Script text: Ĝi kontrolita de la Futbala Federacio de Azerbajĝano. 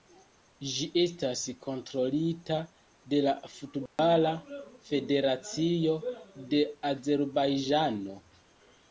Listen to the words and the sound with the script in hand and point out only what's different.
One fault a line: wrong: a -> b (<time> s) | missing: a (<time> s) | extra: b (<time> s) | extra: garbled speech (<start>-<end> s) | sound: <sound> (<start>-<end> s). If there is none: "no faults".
extra: estas (1.0 s)
sound: dropout (3.9-4.0 s)